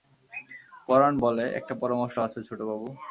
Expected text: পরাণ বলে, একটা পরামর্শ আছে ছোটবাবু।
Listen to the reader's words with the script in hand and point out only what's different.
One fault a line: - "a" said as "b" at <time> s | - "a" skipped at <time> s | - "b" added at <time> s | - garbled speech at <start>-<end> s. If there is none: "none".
none